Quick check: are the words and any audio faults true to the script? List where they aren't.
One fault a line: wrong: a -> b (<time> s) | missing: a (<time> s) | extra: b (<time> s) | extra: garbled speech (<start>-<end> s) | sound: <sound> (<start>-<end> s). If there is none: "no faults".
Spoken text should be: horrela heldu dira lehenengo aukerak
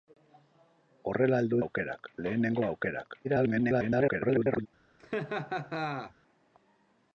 wrong: dira -> aukerak (1.6 s)
extra: garbled speech (3.2-4.7 s)
sound: laugh (5.0-6.1 s)